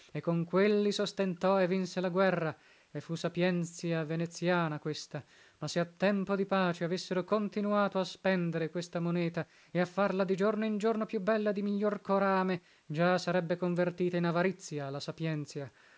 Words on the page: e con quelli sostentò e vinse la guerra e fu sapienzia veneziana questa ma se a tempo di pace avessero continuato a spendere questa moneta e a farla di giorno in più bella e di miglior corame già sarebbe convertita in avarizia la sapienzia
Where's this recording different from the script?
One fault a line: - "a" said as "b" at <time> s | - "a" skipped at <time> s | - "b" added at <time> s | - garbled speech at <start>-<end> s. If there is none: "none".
- "giorno" added at 10.8 s